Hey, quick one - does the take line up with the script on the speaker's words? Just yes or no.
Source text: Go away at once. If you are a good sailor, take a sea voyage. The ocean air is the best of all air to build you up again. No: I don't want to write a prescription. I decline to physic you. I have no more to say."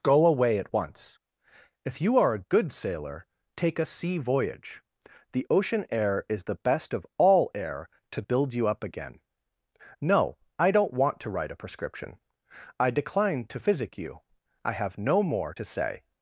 yes